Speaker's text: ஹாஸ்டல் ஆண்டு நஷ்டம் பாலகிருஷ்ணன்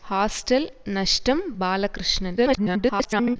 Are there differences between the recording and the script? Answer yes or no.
yes